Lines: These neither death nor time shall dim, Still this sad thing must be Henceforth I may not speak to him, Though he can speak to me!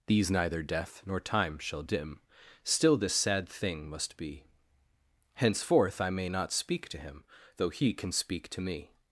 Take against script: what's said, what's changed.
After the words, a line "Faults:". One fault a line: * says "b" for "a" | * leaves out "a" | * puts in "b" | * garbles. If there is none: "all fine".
These neither death nor time shall dim, Still this sad thing must be Henceforth I may not speak to him, Though he can speak to me!
Faults:
all fine